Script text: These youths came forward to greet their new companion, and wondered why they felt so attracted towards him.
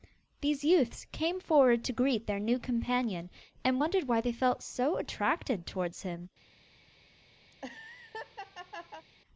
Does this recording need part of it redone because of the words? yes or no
no